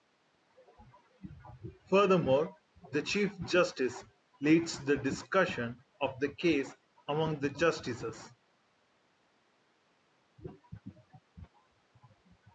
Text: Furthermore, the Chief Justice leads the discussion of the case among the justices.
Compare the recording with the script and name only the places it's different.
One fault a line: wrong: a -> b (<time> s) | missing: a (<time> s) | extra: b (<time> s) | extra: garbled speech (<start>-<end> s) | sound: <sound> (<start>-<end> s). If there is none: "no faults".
no faults